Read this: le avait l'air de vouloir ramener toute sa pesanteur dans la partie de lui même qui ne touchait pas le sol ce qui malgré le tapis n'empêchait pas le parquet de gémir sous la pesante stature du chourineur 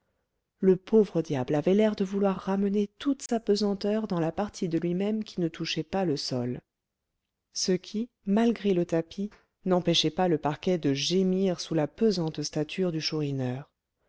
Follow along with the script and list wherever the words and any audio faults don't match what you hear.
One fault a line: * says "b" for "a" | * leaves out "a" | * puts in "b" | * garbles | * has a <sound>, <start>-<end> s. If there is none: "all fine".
* puts in "pauvre diable"
* has a dropout, 3.3-3.3 s